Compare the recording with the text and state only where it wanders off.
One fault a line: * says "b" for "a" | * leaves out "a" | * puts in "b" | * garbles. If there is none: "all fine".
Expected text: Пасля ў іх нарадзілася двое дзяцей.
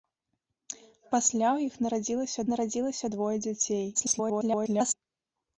* puts in "нарадзілася"
* garbles